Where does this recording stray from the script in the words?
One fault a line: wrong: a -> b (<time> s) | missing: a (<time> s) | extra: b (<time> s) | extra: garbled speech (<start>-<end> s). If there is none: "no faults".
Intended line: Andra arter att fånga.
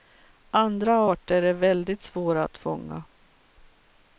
extra: är väldigt svåra (1.4 s)